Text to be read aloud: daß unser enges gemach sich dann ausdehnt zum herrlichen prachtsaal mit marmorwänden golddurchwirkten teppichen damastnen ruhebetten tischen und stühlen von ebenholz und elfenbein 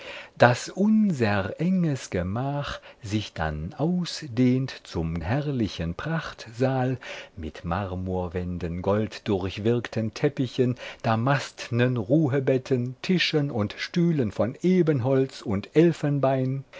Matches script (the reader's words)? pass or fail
pass